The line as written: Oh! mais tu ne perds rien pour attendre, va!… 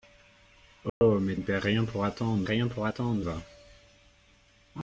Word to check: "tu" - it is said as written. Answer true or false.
false